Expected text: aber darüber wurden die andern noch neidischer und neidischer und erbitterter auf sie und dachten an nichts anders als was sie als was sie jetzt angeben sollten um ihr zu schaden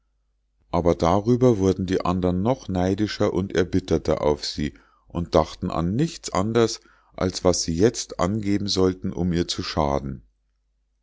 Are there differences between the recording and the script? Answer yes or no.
yes